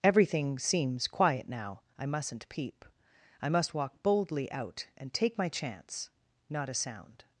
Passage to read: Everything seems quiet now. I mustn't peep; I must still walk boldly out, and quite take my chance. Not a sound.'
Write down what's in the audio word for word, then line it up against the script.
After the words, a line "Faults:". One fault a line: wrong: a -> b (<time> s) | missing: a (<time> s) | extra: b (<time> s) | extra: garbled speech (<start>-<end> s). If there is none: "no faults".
Everything seems quiet now. I mustn't peep; I must walk boldly out, and take my chance. Not a sound.'
Faults:
missing: still (3.8 s)
missing: quite (5.1 s)